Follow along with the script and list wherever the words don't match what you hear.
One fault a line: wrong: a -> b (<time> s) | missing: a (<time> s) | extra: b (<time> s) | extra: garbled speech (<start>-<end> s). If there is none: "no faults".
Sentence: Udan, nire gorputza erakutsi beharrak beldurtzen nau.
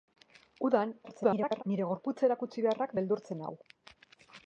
extra: garbled speech (1.0-1.6 s)